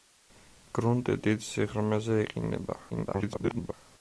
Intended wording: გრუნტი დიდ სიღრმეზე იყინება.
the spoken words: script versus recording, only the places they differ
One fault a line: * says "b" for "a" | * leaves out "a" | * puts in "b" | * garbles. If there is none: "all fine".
* garbles